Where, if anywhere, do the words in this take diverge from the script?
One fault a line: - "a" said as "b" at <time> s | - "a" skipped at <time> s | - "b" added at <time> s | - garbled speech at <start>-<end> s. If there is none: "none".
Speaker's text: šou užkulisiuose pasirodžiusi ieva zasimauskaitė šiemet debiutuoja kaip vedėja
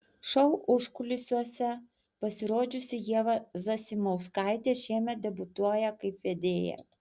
none